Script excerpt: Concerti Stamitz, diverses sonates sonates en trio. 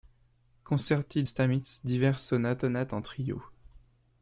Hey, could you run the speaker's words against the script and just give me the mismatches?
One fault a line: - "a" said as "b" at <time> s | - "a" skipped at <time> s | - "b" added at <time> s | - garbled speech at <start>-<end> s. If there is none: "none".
none